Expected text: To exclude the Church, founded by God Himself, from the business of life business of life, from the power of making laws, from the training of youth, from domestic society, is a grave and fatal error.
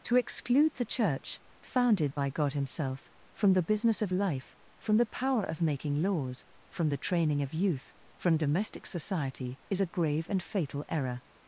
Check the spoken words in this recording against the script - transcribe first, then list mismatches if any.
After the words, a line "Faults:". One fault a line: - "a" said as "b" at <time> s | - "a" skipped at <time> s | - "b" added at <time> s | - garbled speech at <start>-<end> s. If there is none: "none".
To exclude the Church, founded by God Himself, from the business of life, from the power of making laws, from the training of youth, from domestic society, is a grave and fatal error.
Faults:
- "business of life" skipped at 4.5 s